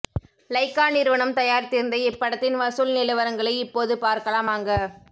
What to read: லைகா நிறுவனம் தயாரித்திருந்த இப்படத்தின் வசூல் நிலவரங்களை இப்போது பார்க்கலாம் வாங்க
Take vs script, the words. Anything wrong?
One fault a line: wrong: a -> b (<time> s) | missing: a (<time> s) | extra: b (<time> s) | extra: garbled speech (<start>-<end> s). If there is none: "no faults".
no faults